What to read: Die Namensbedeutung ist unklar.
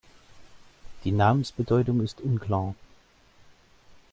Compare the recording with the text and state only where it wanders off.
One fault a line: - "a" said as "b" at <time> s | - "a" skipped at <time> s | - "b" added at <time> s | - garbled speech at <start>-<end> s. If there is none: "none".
none